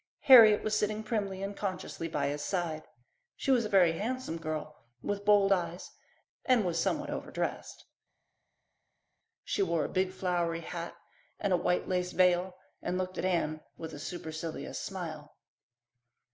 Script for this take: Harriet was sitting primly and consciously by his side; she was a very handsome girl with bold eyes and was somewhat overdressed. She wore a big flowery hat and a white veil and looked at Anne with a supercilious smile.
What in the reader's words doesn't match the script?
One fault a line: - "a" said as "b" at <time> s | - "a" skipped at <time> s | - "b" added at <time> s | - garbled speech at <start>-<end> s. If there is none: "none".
- "lace" added at 11.9 s